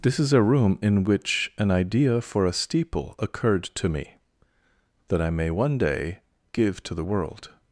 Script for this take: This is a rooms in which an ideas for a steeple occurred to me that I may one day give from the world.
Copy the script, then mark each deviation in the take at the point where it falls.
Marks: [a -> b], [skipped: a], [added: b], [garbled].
This is a [rooms -> room] in which an [ideas -> idea] for a steeple occurred to me that I may one day give [from -> to] the world.